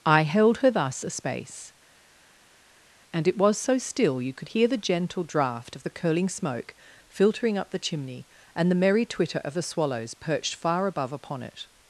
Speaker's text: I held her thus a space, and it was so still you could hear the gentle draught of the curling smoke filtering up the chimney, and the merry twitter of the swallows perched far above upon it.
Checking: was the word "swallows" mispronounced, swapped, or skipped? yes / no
no